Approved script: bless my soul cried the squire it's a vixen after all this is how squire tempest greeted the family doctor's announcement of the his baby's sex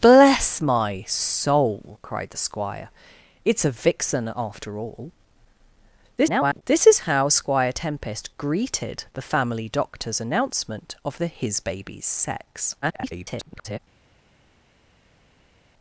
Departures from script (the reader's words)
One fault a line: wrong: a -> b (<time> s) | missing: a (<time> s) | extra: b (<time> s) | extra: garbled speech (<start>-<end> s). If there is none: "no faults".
extra: garbled speech (6.2-6.6 s)
extra: garbled speech (12.8-13.8 s)